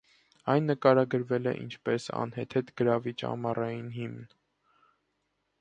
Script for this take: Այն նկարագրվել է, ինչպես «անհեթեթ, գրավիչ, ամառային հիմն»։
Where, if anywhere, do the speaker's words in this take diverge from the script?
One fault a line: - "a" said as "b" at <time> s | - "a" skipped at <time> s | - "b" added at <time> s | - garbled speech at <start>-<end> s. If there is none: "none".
none